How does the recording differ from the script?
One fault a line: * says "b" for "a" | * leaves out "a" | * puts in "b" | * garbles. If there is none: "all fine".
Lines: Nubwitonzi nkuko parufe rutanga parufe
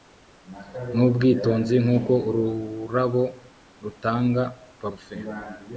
* says "ururabo" for "parufe"